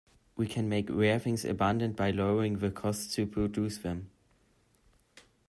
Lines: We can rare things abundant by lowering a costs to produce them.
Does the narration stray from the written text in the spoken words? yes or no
yes